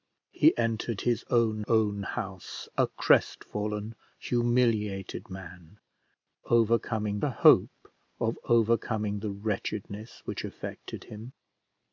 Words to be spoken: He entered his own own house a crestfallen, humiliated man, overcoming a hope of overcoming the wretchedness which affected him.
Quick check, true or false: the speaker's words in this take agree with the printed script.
true